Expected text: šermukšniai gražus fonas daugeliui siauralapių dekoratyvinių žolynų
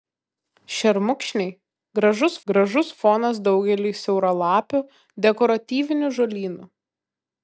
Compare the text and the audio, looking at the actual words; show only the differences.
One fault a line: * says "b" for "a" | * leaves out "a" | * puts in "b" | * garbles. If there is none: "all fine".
* puts in "gražus"